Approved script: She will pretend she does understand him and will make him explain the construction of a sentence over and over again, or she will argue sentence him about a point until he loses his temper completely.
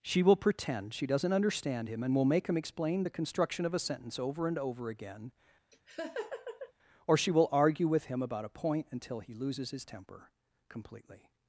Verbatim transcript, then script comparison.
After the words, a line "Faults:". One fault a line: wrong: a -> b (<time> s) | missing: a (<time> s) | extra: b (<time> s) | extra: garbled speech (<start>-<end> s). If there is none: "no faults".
She will pretend she doesn't understand him and will make him explain the construction of a sentence over and over again, or she will argue with him about a point until he loses his temper completely.
Faults:
wrong: does -> doesn't (1.1 s)
wrong: sentence -> with (7.9 s)